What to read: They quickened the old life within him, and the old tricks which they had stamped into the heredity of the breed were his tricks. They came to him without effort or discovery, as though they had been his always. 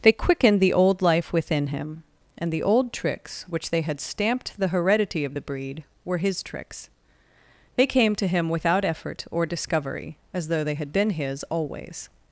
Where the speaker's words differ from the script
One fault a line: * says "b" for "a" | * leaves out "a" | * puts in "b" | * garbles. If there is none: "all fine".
* leaves out "into"